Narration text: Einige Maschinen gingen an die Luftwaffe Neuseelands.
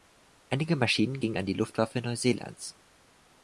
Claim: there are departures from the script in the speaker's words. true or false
false